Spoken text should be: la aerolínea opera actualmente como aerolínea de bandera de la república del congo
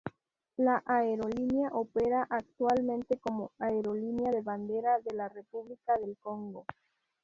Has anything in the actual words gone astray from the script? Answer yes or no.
no